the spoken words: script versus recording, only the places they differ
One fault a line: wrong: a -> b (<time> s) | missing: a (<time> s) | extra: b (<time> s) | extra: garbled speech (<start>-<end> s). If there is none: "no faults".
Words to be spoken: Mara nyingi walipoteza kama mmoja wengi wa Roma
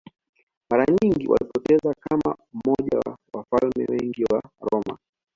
extra: wa wafalme (3.0 s)